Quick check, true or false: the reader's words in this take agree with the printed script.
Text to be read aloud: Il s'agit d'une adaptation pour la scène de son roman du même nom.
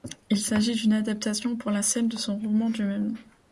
true